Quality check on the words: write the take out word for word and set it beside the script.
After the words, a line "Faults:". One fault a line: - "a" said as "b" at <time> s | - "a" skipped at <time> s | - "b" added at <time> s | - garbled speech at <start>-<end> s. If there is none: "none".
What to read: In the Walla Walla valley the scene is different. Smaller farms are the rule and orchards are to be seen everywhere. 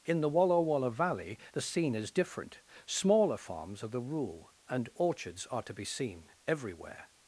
In the Walla Walla valley the scene is different. Smaller farms are the rule and orchards are to be seen everywhere.
Faults:
none